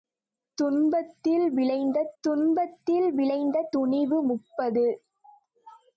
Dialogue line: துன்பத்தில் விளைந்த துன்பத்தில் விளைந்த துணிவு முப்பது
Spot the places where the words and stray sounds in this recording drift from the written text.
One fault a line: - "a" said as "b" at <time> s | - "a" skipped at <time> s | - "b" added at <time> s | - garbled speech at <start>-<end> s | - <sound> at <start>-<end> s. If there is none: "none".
none